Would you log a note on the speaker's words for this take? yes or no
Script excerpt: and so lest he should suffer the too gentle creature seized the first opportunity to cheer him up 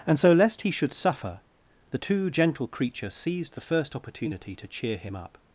no